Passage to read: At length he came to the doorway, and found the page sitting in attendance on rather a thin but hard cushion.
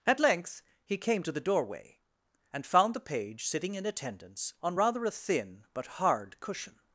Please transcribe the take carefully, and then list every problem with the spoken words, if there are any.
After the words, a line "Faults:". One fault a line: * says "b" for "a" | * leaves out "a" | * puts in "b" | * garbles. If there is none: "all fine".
At length he came to the doorway, and found the page sitting in attendance on rather a thin but hard cushion.
Faults:
all fine